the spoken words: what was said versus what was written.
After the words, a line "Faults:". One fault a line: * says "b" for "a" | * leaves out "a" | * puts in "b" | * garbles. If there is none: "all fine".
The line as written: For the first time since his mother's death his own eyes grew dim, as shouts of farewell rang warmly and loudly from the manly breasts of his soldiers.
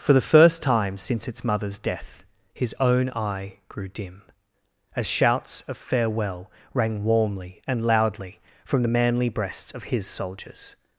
For the first time since its mother's death his own eye grew dim, as shouts of farewell rang warmly and loudly from the manly breasts of his soldiers.
Faults:
* says "its" for "his"
* says "eye" for "eyes"